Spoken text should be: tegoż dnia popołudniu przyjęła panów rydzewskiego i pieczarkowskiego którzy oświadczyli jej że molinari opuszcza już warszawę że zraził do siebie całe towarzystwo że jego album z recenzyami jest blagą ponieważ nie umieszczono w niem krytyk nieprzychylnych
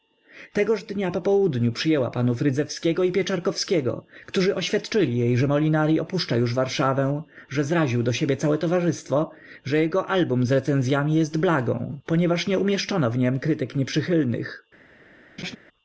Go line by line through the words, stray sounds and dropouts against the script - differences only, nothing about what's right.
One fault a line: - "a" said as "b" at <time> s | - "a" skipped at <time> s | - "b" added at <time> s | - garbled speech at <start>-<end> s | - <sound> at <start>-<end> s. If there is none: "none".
- laugh at 15.4-15.6 s